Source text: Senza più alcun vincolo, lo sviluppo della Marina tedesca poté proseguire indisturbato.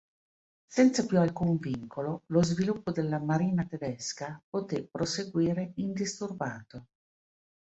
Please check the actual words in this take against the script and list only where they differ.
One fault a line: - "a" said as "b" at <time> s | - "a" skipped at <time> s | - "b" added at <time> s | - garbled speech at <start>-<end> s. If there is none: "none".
none